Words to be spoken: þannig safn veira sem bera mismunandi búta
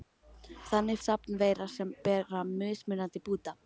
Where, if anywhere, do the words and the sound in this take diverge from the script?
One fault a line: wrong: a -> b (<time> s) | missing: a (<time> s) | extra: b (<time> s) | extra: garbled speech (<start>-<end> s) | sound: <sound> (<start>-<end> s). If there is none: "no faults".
no faults